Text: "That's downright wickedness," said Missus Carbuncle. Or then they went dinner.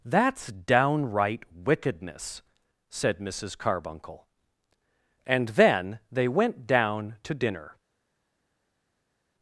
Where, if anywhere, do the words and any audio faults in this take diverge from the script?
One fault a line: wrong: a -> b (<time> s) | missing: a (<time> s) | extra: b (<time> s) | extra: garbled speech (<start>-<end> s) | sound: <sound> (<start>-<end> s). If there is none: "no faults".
wrong: Or -> And (5.3 s)
extra: down to (6.7 s)